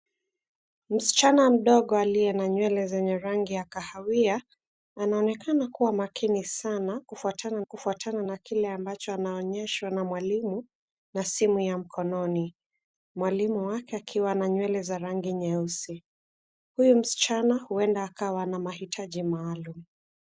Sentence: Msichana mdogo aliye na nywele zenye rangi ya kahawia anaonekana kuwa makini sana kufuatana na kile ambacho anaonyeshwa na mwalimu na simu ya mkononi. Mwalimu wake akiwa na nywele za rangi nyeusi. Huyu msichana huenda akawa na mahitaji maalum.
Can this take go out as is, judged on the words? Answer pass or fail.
fail